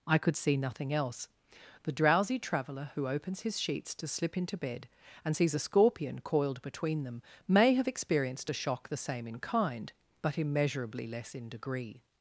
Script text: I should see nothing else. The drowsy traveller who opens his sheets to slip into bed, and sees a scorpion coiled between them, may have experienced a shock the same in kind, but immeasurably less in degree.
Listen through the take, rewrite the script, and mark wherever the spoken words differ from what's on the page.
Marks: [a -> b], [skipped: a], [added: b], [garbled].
I [should -> could] see nothing else. The drowsy traveller who opens his sheets to slip into bed, and sees a scorpion coiled between them, may have experienced a shock the same in kind, but immeasurably less in degree.